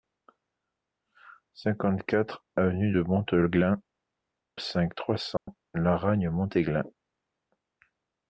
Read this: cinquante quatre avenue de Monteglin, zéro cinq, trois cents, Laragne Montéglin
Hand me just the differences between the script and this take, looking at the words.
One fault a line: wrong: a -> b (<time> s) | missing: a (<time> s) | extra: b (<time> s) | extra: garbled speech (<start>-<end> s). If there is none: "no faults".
missing: zéro (3.8 s)